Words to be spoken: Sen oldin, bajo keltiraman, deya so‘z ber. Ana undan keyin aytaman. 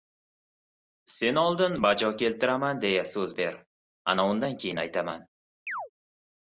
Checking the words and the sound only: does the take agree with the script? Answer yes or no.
no